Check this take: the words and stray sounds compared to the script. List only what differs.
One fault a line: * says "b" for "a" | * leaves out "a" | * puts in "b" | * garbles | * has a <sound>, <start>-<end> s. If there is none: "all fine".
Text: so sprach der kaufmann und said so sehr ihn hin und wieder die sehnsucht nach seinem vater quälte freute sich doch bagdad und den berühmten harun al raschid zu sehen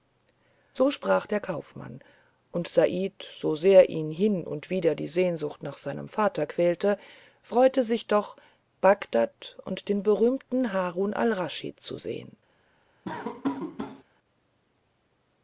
* has a laugh, 13.0-14.0 s